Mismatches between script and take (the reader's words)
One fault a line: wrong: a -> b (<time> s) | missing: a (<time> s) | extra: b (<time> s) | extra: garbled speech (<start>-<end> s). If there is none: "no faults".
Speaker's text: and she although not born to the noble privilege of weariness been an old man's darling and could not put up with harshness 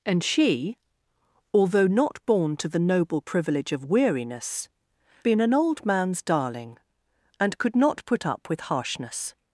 no faults